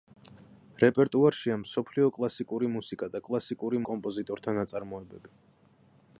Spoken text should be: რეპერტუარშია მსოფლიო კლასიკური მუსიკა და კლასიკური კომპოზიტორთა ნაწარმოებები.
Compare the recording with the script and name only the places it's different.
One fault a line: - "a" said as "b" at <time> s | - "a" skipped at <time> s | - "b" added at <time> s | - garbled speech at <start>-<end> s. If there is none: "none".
none